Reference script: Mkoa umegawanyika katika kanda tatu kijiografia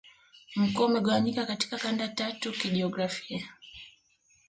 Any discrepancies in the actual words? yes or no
no